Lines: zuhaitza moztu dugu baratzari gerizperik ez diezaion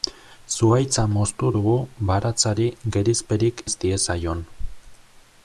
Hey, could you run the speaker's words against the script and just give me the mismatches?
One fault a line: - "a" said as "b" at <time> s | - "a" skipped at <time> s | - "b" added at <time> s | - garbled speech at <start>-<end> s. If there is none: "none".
none